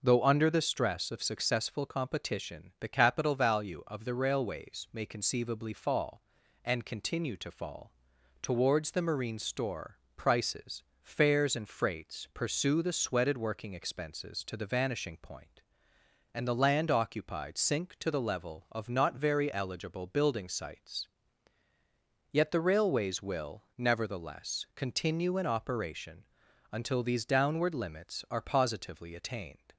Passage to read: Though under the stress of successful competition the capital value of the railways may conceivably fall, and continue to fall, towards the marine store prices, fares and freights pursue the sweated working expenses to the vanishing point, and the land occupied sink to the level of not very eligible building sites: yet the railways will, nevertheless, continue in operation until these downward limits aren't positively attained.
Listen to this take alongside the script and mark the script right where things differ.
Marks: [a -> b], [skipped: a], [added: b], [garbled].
Though under the stress of successful competition the capital value of the railways may conceivably fall, and continue to fall, towards the marine store prices, fares and freights pursue the sweated working expenses to the vanishing point, and the land occupied sink to the level of not very eligible building sites: yet the railways will, nevertheless, continue in operation until these downward limits [aren't -> are] positively attained.